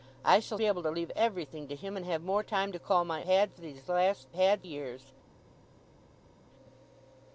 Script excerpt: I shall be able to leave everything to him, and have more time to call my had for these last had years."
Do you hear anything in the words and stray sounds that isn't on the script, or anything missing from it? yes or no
no